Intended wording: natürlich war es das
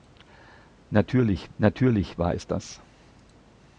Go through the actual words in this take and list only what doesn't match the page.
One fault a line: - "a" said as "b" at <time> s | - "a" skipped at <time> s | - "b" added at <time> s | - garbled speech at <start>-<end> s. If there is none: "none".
- "natürlich" added at 1.6 s